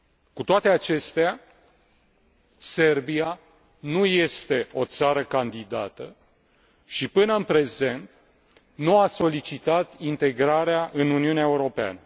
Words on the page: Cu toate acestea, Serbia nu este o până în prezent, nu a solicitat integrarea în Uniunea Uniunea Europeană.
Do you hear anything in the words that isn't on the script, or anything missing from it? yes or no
yes